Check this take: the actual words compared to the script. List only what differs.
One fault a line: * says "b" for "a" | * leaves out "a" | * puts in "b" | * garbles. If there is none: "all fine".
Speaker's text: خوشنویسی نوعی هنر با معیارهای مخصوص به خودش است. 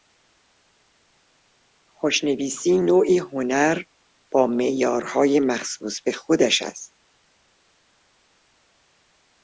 all fine